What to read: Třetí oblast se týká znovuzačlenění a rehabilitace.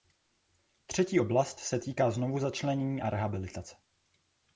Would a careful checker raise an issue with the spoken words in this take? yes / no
no